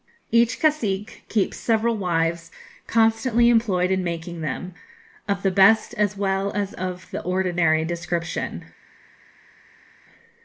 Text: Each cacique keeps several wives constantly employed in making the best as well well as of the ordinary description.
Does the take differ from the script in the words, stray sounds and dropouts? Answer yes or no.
yes